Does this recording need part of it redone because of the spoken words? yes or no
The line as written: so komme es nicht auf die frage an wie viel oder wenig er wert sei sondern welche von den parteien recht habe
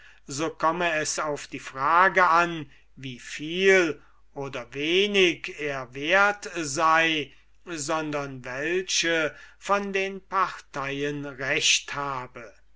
yes